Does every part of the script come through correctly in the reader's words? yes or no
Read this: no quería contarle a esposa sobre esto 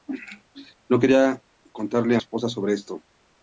yes